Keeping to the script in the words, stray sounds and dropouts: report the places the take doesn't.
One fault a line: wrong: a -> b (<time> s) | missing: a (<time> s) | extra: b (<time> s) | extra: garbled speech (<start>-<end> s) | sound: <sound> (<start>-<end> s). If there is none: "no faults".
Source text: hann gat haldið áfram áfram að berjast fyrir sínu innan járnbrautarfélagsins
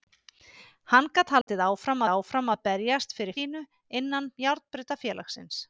sound: dropout (1.4-1.5 s)